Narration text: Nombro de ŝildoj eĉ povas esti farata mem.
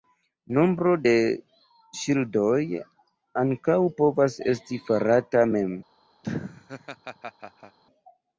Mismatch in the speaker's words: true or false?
true